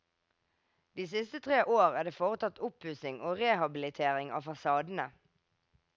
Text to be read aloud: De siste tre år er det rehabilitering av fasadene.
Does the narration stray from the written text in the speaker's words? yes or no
yes